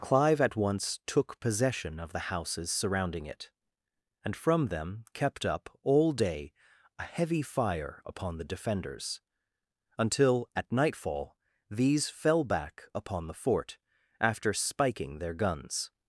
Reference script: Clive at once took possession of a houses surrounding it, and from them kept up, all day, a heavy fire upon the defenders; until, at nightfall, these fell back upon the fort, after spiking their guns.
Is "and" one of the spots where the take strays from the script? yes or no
no